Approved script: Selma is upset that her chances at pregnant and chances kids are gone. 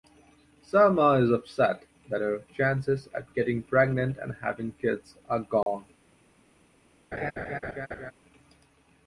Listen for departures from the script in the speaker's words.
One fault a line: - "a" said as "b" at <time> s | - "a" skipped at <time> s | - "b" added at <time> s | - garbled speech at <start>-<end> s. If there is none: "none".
- "getting" added at 3.4 s
- "chances" said as "having" at 4.4 s